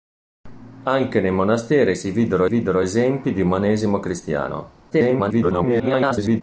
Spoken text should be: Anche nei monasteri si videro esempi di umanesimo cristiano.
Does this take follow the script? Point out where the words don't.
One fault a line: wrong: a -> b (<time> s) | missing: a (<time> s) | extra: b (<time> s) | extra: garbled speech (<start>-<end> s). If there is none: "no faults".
extra: videro (2.4 s)
extra: garbled speech (4.9-6.4 s)